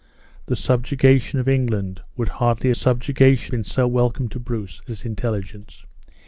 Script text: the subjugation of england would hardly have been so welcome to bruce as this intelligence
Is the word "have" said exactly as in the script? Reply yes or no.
no